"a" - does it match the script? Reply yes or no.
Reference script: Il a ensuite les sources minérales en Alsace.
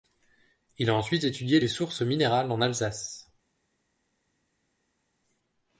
yes